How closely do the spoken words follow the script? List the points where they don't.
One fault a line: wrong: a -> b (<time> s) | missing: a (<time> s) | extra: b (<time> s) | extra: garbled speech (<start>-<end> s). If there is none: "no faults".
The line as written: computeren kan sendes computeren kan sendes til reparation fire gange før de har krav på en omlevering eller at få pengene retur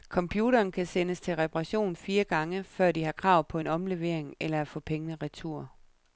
missing: computeren kan sendes (1.2 s)